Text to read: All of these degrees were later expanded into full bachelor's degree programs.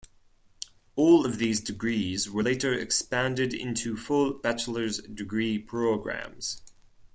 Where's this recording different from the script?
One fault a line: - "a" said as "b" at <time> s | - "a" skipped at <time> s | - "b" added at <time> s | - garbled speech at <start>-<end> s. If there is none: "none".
none